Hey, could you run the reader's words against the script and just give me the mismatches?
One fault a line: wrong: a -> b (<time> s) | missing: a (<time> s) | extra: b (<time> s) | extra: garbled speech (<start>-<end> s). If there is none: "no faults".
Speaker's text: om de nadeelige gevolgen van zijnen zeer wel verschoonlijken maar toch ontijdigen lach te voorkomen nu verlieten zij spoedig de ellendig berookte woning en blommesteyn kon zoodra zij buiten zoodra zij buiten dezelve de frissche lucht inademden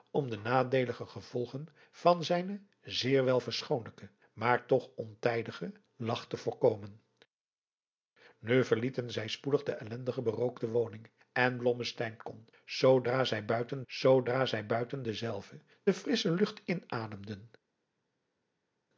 no faults